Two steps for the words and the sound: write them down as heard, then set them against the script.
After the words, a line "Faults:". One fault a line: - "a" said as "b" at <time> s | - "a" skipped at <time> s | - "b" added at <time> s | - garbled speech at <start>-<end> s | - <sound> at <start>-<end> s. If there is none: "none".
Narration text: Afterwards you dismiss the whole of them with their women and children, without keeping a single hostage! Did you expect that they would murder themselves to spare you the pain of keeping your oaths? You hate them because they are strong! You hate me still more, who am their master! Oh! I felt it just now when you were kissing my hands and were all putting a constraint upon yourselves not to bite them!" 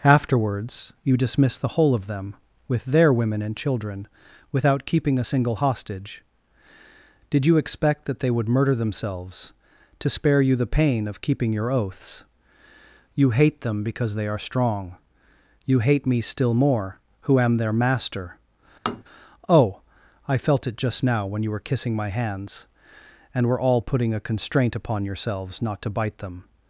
Afterwards you dismiss the whole of them with their women and children, without keeping a single hostage! Did you expect that they would murder themselves to spare you the pain of keeping your oaths? You hate them because they are strong! You hate me still more, who am their master! Oh! I felt it just now when you were kissing my hands and were all putting a constraint upon yourselves not to bite them!"
Faults:
- tap at 18.9-19.0 s